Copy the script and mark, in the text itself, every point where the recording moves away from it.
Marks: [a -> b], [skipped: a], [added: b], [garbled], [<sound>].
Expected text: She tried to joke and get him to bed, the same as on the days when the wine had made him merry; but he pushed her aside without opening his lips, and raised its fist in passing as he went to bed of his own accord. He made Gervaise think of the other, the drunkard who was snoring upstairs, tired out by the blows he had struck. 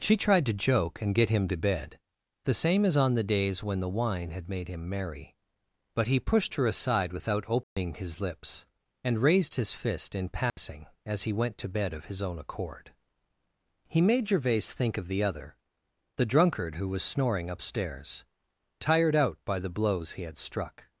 She tried to joke and get him to bed, the same as on the days when the wine had made him merry; but he pushed her aside without opening [dropout] his lips, and raised [its -> his] fist in passing [dropout] as he went to bed of his own accord. He made Gervaise think of the other, the drunkard who was snoring upstairs, tired out by the blows he had struck.